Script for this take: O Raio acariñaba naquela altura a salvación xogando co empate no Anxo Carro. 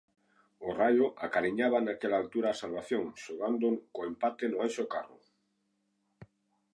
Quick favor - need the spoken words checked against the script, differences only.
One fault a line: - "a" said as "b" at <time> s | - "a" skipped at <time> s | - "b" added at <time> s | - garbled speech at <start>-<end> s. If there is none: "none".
none